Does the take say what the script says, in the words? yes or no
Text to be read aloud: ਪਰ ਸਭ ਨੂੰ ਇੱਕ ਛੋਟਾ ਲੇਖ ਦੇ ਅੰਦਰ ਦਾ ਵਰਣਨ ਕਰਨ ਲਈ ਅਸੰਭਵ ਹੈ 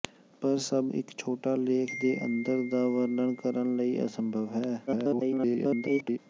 no